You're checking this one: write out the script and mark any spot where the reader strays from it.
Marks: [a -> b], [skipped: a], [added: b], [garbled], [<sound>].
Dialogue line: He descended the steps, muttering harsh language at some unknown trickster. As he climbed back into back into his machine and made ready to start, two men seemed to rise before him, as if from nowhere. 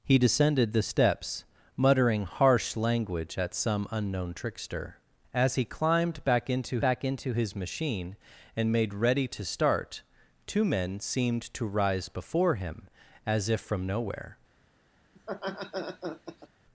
He descended the steps, muttering harsh language at some unknown trickster. As he climbed back into back into his machine and made ready to start, two men seemed to rise before him, as if from nowhere. [laugh]